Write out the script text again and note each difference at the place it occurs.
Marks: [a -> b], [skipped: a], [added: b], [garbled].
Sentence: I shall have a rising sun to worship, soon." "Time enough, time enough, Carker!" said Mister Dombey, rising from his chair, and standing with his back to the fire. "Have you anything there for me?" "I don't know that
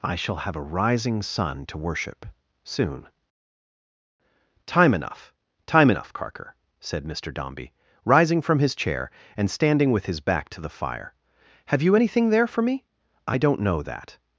I shall have a rising sun to worship, soon." "Time enough, time enough, Carker!" said Mister Dombey, rising from his chair, and standing with his back to the fire. "Have you anything there for me?" "I don't know that